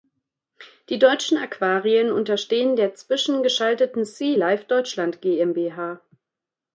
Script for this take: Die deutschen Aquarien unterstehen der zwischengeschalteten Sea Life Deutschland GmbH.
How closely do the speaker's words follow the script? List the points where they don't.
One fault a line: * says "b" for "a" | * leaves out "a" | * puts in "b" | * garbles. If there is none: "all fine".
all fine